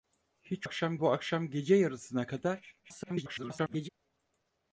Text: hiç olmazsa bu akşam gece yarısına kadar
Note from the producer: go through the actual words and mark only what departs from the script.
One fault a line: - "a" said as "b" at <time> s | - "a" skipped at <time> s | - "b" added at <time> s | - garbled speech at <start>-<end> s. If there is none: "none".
- "olmazsa" said as "akşam" at 0.6 s
- garbled speech at 2.8-3.9 s